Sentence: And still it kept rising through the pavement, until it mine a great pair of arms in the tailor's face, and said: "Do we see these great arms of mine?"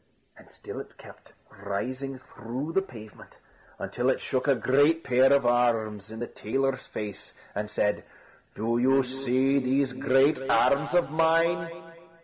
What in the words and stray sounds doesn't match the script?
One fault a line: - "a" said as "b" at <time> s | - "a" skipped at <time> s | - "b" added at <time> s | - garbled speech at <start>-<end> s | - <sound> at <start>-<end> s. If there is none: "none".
- "mine" said as "shook" at 4.2 s
- "we" said as "you" at 8.8 s